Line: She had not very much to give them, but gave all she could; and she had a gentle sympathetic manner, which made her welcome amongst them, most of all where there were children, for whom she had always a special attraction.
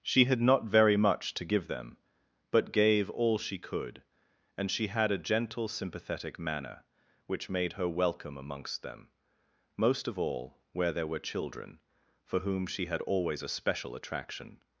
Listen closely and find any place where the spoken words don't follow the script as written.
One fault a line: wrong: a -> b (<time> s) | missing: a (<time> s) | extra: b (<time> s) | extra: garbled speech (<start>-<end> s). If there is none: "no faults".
no faults